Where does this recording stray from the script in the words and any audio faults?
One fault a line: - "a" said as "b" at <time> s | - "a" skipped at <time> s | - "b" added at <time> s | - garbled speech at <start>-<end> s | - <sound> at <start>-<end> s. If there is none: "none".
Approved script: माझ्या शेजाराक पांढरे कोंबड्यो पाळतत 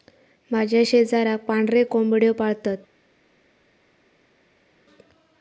none